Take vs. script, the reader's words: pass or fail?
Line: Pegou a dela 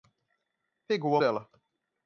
pass